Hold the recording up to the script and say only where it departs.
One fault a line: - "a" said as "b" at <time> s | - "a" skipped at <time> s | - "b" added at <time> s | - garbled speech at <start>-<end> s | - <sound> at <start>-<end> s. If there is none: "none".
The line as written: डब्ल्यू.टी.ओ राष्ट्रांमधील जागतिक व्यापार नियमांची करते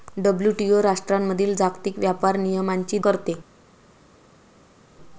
none